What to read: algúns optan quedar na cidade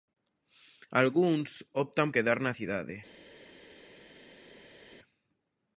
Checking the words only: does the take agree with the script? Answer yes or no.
yes